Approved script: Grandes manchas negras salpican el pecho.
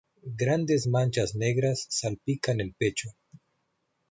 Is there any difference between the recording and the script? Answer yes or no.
no